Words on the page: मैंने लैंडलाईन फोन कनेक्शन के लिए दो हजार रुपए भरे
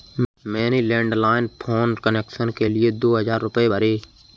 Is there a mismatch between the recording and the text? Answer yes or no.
no